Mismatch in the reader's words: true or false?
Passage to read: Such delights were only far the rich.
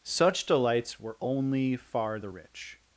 false